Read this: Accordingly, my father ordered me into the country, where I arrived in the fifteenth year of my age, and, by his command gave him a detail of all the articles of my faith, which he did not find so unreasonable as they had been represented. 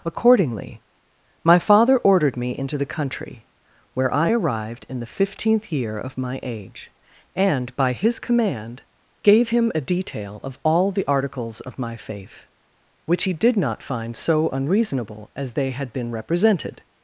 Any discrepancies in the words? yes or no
no